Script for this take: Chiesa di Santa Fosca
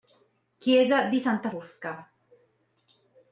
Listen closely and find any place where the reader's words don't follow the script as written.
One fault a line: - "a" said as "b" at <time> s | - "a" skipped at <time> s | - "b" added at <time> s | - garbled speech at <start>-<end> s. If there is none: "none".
none